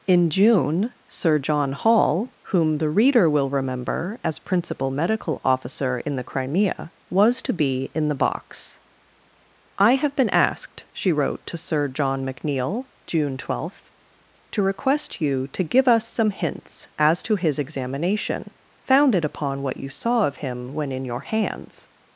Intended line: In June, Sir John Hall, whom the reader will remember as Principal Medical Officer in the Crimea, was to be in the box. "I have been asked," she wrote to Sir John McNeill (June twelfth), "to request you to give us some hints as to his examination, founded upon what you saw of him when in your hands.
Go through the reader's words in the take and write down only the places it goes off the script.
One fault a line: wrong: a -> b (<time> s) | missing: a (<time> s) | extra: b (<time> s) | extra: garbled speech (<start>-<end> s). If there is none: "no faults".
no faults